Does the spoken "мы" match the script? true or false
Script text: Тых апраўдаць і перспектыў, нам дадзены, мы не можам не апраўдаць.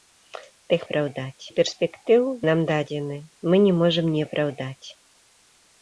true